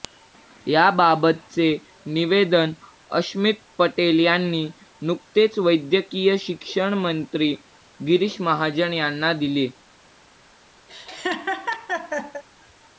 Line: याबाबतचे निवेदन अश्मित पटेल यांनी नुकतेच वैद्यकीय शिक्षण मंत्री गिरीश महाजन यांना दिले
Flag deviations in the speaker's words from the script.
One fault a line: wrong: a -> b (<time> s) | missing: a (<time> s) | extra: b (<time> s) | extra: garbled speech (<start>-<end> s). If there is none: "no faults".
no faults